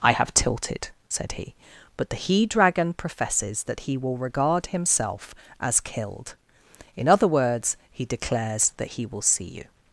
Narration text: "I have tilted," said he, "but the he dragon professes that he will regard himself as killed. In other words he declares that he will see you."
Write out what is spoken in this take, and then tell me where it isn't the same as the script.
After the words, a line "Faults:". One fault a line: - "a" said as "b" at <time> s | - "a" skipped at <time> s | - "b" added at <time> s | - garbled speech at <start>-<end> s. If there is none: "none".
"I have tilted," said he, "but the he dragon professes that he will regard himself as killed. In other words he declares that he will see you."
Faults:
none